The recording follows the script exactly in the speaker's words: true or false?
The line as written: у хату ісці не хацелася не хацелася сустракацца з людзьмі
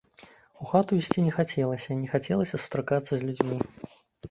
true